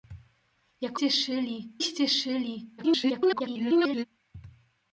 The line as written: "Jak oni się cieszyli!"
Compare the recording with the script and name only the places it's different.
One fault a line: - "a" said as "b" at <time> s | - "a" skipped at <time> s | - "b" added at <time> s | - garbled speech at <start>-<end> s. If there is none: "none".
- "oni" said as "cieszyli" at 0.9 s
- garbled speech at 2.8-4.0 s